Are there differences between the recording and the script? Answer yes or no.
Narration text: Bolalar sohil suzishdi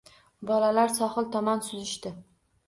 yes